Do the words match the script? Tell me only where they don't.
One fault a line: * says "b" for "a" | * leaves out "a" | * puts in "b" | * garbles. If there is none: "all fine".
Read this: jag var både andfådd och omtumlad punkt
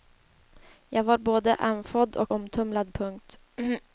all fine